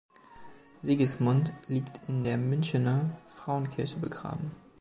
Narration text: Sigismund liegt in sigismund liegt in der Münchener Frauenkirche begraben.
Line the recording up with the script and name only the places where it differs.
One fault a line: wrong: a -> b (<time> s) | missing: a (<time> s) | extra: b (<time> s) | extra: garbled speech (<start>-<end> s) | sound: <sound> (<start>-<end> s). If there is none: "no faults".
missing: sigismund liegt in (2.2 s)